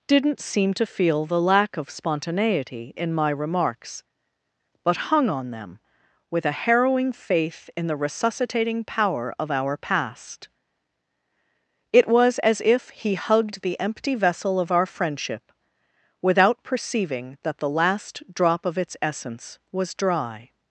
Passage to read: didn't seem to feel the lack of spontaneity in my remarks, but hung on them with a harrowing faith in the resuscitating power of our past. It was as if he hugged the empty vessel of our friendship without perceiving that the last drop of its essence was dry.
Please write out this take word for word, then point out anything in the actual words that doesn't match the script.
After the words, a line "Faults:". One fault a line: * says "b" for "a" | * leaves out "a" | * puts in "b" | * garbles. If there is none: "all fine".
didn't seem to feel the lack of spontaneity in my remarks, but hung on them with a harrowing faith in the resuscitating power of our past. It was as if he hugged the empty vessel of our friendship without perceiving that the last drop of its essence was dry.
Faults:
all fine